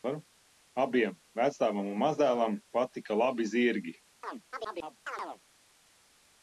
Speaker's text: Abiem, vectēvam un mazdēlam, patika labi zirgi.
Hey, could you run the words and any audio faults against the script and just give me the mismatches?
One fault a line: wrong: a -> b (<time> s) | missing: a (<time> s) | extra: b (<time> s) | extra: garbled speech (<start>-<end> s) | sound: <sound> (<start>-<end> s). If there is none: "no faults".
sound: chirp (4.2-5.4 s)